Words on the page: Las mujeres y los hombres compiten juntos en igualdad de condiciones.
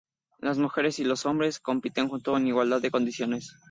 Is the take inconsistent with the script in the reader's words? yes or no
no